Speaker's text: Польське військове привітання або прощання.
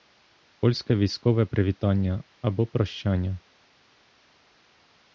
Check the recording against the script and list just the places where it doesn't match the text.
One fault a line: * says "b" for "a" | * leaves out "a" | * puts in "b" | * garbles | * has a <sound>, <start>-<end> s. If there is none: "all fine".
all fine